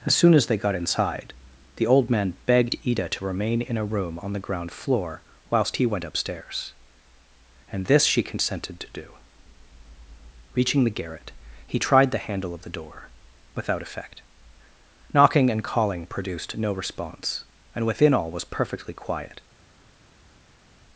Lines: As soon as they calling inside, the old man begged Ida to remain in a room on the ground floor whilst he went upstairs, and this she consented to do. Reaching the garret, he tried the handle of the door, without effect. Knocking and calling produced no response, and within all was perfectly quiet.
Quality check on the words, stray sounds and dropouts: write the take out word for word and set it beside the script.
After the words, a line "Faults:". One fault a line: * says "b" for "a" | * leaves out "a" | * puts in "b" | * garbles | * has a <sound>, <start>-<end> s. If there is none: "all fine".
As soon as they got inside, the old man begged Ida to remain in a room on the ground floor whilst he went upstairs, and this she consented to do. Reaching the garret, he tried the handle of the door, without effect. Knocking and calling produced no response, and within all was perfectly quiet.
Faults:
* says "got" for "calling"